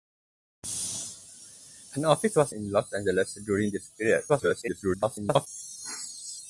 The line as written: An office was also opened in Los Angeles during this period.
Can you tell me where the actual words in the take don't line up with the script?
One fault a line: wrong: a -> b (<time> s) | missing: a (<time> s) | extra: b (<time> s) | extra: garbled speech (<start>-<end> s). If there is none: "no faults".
missing: also opened (2.5 s)
extra: garbled speech (4.3-5.5 s)